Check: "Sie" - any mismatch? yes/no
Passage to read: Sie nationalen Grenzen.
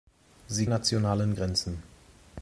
no